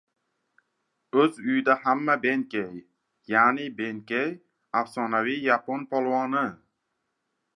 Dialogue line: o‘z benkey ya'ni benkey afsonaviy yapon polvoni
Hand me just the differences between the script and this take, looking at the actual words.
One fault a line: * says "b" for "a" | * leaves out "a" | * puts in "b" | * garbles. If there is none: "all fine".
* puts in "uyida hamma"